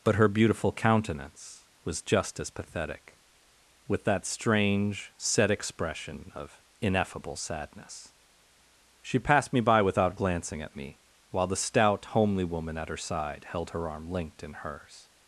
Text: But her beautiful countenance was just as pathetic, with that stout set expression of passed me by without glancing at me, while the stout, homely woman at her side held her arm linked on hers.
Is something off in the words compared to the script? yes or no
yes